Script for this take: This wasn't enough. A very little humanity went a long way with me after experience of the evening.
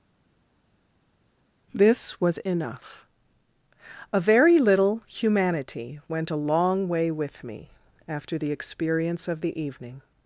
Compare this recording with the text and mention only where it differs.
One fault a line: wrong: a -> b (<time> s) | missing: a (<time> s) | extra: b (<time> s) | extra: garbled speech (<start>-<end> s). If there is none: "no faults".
wrong: wasn't -> was (2.2 s)
extra: the (8.4 s)